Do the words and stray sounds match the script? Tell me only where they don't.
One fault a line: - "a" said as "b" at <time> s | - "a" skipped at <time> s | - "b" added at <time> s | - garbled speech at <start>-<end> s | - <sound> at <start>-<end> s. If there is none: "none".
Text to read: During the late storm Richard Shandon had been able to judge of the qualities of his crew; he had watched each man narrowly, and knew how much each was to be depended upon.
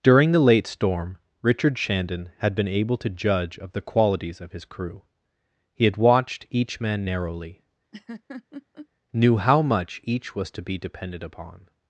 - "and" skipped at 7.6 s
- laugh at 7.9-8.9 s